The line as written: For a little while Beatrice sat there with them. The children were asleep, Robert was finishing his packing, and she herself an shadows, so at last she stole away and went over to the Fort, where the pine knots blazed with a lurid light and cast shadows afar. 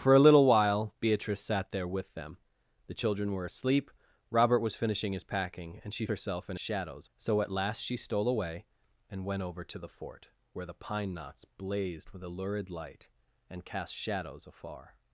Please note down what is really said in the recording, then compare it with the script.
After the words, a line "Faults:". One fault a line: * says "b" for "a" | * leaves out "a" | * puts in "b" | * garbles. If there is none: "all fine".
For a little while Beatrice sat there with them. The children were asleep, Robert was finishing his packing, and she herself an shadows, so at last she stole away and went over to the Fort, where the pine knots blazed with a lurid light and cast shadows afar.
Faults:
all fine